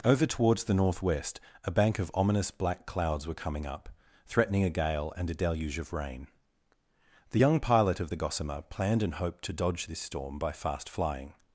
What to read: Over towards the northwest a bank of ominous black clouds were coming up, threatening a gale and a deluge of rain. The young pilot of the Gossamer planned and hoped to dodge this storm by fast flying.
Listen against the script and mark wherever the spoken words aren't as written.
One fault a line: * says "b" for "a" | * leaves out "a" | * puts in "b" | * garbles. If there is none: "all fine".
all fine